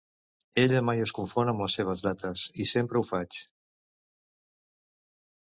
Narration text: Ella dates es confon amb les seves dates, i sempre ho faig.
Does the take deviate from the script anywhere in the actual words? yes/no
yes